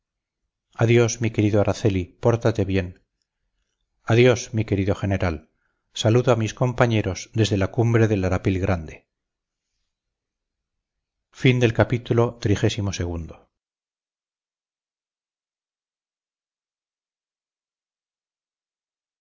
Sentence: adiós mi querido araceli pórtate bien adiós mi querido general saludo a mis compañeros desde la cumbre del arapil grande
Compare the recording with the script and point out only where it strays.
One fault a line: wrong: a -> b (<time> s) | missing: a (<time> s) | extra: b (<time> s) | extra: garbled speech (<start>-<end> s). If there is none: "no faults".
no faults